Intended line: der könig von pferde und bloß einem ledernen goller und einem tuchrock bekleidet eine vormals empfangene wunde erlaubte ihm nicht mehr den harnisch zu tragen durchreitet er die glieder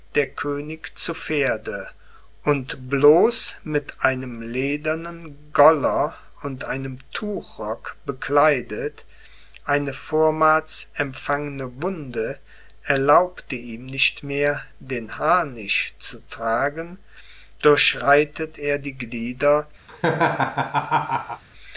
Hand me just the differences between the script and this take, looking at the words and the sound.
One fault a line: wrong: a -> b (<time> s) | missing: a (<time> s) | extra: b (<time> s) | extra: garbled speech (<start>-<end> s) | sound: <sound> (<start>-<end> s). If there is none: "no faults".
wrong: von -> zu (1.0 s)
extra: mit (3.6 s)
sound: laugh (19.9-21.4 s)